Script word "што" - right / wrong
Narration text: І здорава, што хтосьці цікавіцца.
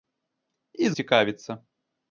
wrong